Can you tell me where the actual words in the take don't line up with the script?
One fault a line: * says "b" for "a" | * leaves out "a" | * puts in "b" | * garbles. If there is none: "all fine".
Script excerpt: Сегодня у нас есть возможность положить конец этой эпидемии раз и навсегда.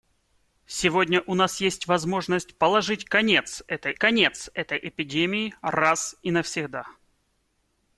* puts in "конец этой"